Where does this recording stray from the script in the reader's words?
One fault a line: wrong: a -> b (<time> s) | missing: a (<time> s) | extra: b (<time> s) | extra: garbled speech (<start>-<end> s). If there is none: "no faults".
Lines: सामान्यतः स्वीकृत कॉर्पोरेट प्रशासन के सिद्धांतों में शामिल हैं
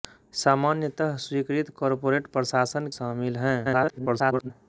missing: के सिद्धांतों में (2.9 s)
extra: garbled speech (3.6-4.5 s)